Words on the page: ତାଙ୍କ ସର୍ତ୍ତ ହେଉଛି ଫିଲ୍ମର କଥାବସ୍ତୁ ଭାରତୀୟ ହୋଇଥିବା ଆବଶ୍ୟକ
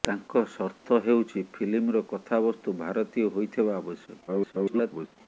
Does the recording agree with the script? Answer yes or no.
no